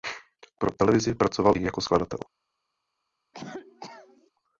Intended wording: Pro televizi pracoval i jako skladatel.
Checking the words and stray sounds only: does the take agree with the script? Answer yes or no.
no